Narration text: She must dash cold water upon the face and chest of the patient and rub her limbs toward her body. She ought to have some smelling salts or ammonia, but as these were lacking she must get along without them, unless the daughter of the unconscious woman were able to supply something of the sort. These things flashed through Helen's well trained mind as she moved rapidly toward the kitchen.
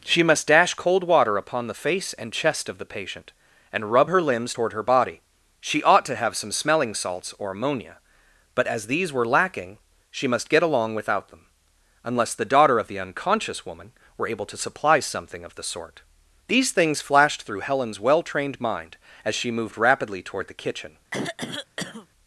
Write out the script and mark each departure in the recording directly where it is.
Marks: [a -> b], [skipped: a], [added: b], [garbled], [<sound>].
She must dash cold water upon the face and chest of the patient and rub her limbs toward her body. She ought to have some smelling salts or ammonia, but as these were lacking she must get along without them, unless the daughter of the unconscious woman were able to supply something of the sort. These things flashed through Helen's well trained mind as she moved rapidly toward the kitchen. [throat clearing]